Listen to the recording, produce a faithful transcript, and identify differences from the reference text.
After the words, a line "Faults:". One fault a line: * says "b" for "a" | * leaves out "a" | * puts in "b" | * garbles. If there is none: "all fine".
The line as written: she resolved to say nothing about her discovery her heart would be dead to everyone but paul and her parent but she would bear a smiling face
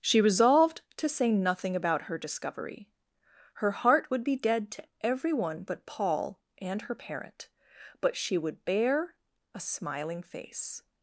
she resolved to say nothing about her discovery her heart would be dead to everyone but paul and her parent but she would bear a smiling face
Faults:
all fine